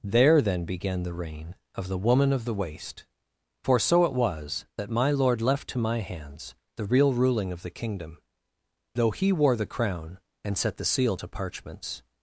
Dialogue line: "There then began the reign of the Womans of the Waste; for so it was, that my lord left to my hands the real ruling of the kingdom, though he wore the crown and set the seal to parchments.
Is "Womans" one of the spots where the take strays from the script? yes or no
yes